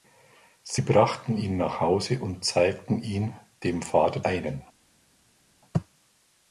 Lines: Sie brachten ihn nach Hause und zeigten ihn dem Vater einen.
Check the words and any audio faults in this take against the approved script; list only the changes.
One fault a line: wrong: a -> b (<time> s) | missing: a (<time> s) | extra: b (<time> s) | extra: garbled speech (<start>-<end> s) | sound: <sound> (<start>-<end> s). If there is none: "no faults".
no faults